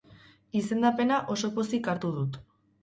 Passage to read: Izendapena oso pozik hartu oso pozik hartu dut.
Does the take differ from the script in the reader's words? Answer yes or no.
yes